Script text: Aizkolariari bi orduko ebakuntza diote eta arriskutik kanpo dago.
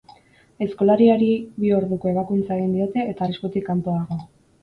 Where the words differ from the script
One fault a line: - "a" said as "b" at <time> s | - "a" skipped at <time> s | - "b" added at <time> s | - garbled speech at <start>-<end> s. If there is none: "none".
- "egin" added at 2.6 s